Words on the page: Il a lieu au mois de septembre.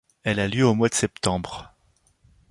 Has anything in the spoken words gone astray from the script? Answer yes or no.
yes